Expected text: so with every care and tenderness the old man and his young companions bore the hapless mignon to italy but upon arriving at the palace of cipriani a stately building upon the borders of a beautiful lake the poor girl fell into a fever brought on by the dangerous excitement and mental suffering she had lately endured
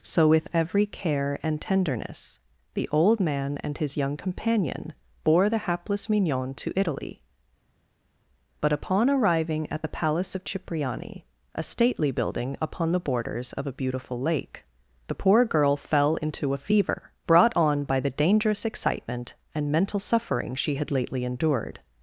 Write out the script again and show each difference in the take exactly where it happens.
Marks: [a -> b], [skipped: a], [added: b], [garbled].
so with every care and tenderness the old man and his young [companions -> companion] bore the hapless mignon to italy but upon arriving at the palace of cipriani a stately building upon the borders of a beautiful lake the poor girl fell into a fever brought on by the dangerous excitement and mental suffering she had lately endured